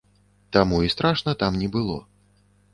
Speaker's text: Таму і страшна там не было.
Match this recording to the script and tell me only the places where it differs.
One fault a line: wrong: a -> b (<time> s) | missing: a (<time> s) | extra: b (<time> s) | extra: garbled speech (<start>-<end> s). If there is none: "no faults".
no faults